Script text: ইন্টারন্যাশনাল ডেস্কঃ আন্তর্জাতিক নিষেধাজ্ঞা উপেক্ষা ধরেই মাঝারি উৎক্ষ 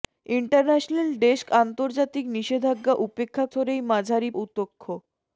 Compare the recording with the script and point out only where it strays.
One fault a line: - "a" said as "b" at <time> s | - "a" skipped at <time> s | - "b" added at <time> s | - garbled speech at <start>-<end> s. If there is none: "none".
none